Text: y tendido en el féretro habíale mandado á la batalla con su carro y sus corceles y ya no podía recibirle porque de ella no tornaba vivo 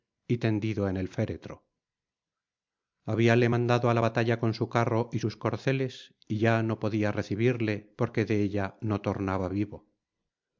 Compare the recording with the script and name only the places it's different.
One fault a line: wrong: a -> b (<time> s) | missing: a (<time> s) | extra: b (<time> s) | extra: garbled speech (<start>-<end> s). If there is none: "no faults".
no faults